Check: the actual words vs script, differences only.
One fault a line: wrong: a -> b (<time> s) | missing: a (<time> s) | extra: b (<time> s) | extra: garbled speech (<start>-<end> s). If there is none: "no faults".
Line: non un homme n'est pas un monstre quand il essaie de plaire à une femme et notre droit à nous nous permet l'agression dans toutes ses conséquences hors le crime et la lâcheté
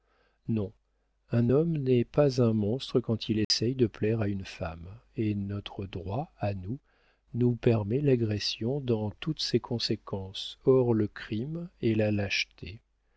no faults